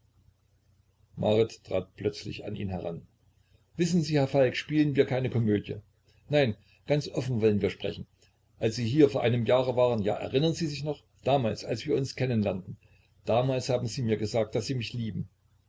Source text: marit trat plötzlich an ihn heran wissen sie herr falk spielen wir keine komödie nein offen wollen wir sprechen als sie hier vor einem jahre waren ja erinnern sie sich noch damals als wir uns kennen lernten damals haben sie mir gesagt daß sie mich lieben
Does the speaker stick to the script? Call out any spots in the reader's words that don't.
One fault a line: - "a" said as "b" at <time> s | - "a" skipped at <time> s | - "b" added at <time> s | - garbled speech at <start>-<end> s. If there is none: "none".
- "ganz" added at 6.9 s